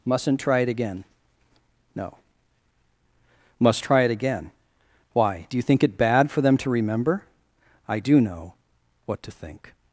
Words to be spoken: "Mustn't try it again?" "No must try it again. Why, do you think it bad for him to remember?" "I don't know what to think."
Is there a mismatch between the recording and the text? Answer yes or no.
yes